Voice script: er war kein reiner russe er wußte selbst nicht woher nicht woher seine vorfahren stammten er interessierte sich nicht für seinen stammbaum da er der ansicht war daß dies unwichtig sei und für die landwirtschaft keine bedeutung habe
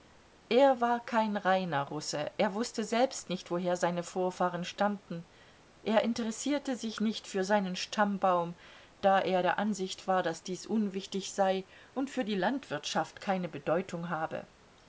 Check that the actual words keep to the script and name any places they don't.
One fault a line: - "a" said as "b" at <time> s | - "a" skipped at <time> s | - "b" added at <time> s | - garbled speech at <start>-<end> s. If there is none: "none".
- "nicht woher" skipped at 3.8 s